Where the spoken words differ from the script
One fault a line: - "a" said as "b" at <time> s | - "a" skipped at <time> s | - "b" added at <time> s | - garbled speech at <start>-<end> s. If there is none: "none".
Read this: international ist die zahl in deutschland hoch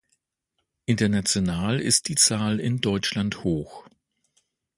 none